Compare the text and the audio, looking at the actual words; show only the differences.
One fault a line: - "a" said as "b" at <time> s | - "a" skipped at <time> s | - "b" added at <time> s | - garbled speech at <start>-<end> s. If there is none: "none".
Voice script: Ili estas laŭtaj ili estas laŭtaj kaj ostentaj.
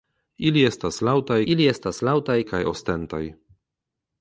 none